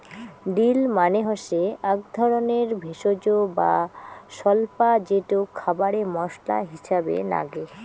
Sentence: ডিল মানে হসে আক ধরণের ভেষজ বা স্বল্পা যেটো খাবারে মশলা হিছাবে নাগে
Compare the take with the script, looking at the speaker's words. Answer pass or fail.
pass